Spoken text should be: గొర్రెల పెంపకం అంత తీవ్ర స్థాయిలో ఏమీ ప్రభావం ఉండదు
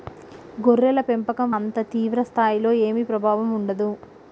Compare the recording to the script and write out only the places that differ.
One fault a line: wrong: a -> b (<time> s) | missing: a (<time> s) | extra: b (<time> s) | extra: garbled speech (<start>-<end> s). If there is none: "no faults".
no faults